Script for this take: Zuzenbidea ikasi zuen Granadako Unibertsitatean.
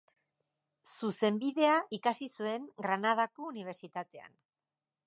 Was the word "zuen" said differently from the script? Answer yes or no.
no